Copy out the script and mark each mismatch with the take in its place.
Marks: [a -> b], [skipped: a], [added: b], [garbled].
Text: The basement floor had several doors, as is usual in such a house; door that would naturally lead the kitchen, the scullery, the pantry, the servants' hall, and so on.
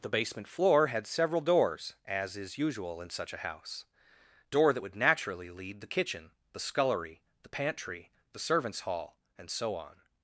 The basement floor had several doors, as is usual in such a house; door that would naturally lead the kitchen, the scullery, the pantry, the servants' hall, and so on.